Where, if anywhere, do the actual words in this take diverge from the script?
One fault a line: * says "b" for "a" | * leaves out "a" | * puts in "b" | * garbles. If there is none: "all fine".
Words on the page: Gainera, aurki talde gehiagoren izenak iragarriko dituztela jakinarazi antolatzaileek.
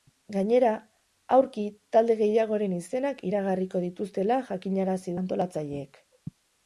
all fine